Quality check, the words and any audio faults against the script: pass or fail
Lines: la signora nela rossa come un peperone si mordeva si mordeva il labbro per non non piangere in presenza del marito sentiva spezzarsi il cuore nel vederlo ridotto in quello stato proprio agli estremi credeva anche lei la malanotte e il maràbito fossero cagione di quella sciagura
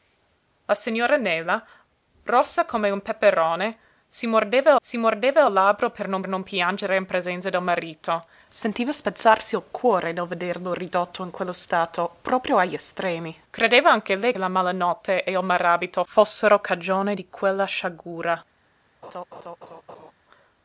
fail